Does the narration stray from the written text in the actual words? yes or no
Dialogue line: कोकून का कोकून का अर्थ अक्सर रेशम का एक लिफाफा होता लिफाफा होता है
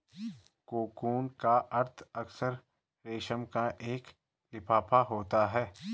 yes